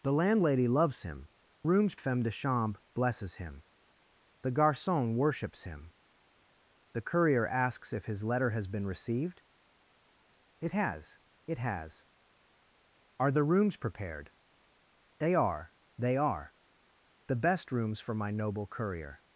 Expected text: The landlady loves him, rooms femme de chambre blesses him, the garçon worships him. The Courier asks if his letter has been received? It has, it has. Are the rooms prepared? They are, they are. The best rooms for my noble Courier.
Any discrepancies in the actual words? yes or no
no